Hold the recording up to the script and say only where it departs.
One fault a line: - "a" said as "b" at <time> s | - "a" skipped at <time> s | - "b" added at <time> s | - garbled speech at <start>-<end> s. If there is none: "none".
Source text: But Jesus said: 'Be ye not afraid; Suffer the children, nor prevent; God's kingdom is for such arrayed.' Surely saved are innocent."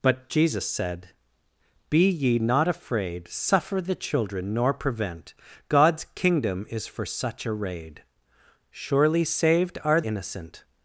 none